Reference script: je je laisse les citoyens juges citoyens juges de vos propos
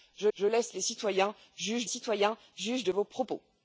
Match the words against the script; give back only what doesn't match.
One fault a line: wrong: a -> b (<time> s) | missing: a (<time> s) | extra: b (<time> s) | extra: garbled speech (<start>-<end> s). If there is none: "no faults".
no faults